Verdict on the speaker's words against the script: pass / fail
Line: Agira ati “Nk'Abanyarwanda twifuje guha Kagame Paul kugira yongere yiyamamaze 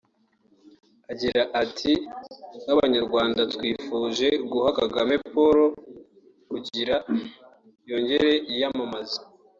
pass